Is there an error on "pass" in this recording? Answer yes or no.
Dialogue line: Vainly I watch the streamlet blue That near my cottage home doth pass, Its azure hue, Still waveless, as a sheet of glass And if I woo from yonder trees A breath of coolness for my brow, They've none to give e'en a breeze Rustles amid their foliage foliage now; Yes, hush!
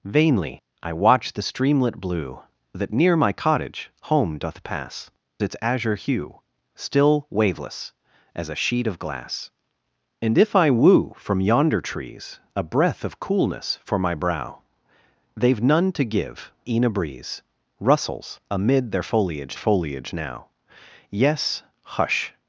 no